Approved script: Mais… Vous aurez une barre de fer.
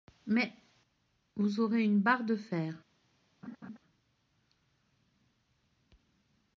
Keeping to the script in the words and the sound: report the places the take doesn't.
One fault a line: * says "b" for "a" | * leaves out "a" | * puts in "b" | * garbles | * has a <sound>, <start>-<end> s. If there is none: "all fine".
* has a laugh, 3.4-3.8 s